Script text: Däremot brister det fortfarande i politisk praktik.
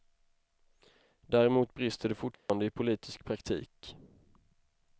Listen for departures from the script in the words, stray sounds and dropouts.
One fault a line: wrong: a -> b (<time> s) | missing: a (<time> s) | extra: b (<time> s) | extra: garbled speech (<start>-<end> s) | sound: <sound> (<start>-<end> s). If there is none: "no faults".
sound: dropout (2.3-2.5 s)